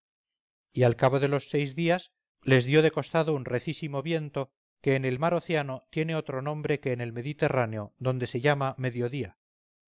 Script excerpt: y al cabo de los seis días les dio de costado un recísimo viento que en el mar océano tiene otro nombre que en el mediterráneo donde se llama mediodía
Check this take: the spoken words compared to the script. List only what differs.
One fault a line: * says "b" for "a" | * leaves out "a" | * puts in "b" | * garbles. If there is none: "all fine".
all fine